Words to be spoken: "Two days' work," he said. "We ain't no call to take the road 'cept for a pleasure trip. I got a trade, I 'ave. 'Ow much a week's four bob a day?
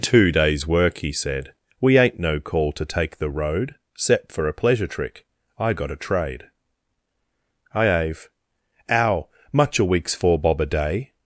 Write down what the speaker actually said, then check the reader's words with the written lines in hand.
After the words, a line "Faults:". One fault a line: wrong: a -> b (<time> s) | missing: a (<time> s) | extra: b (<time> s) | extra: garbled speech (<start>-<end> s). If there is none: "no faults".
"Two days' work," he said. "We ain't no call to take the road 'cept for a pleasure trick. I got a trade, I 'ave. 'Ow much a week's four bob a day?
Faults:
wrong: trip -> trick (4.9 s)